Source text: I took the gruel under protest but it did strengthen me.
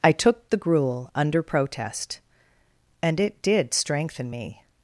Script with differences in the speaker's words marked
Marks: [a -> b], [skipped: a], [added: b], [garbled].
I took the gruel under protest [but -> and] it did strengthen me.